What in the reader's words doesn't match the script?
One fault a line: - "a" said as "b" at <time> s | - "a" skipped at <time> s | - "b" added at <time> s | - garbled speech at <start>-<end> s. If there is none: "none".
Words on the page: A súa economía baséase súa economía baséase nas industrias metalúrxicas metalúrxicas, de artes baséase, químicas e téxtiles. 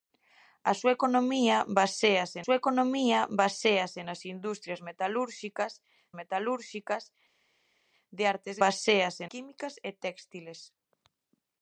none